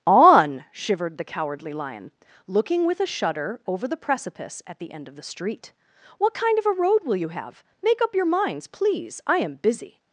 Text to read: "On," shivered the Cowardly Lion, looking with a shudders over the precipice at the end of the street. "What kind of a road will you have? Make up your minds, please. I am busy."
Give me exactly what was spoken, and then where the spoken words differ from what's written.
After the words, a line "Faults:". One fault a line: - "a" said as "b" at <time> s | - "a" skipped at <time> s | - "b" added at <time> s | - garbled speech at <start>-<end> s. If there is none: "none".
"On," shivered the Cowardly Lion, looking with a shudder over the precipice at the end of the street. "What kind of a road will you have? Make up your minds, please. I am busy."
Faults:
- "shudders" said as "shudder" at 3.0 s